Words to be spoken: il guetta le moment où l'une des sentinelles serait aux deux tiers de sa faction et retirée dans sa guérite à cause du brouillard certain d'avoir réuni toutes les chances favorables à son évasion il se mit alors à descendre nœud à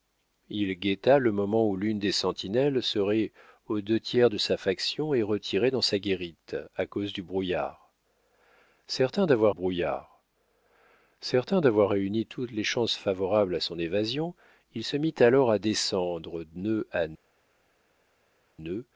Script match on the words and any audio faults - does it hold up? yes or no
no